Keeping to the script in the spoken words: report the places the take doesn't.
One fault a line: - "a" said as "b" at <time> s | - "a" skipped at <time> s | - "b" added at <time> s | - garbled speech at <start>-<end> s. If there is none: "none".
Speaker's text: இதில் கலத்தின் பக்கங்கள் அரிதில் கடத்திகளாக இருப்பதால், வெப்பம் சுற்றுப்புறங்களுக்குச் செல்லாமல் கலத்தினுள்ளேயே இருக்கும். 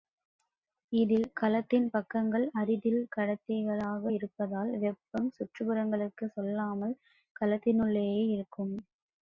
none